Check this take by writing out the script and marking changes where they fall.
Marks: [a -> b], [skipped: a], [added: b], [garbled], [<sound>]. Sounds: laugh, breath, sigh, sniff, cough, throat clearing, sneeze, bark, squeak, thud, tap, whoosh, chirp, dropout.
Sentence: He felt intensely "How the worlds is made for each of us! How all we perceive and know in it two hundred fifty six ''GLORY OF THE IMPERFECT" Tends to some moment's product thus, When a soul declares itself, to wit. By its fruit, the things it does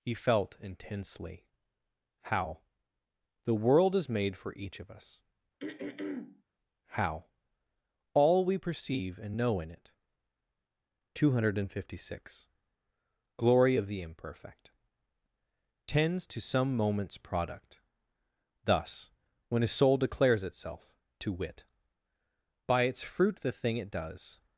He felt intensely "How the [worlds -> world] is made for each of us! [throat clearing] How all we perceive and know in it two hundred fifty six ''GLORY OF THE IMPERFECT" Tends to some moment's product thus, When a soul declares itself, to wit. By its fruit, the [things -> thing] it does